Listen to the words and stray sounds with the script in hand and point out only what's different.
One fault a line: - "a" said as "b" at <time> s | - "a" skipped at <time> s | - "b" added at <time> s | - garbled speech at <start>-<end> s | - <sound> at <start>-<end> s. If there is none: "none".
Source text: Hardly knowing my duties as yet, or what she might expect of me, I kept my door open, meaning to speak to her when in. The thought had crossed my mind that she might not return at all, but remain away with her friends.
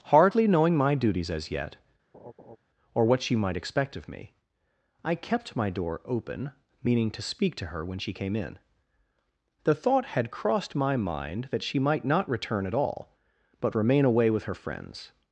- laugh at 2.1-2.6 s
- "she came" added at 8.0 s